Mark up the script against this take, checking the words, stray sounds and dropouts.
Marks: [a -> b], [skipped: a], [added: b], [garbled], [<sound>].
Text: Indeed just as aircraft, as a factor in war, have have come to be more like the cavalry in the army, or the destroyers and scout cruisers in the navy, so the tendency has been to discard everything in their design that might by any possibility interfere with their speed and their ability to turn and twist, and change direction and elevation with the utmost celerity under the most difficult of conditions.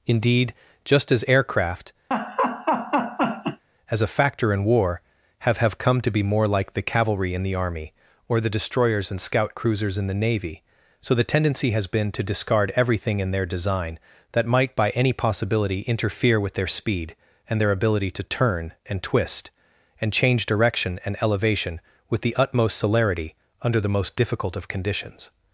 Indeed just as aircraft, [laugh] as a factor in war, have have come to be more like the cavalry in the army, or the destroyers and scout cruisers in the navy, so the tendency has been to discard everything in their design that might by any possibility interfere with their speed and their ability to turn and twist, and change direction and elevation with the utmost celerity under the most difficult of conditions.